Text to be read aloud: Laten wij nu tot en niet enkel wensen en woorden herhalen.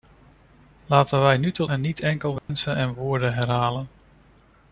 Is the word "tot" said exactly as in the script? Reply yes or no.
yes